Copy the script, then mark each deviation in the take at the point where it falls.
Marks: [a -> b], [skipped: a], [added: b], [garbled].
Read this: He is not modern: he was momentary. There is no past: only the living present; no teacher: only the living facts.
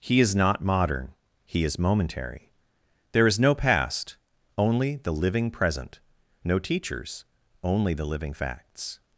He is not modern: he [was -> is] momentary. There is no past: only the living present; no [teacher: -> teachers] only the living facts.